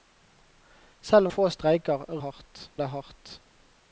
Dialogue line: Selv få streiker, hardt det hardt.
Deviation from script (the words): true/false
false